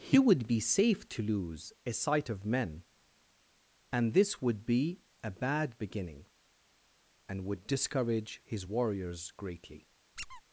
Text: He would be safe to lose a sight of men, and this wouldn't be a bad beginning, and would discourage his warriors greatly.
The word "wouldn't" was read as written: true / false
false